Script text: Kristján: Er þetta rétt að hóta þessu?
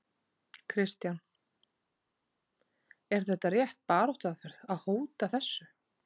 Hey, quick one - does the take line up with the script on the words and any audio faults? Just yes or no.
no